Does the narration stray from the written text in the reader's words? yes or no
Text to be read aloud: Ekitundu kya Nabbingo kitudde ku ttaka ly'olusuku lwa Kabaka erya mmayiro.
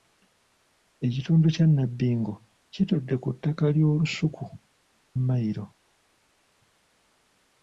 yes